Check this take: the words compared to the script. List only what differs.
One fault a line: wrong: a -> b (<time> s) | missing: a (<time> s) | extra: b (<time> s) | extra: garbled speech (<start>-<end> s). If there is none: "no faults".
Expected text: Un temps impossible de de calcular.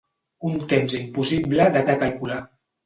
no faults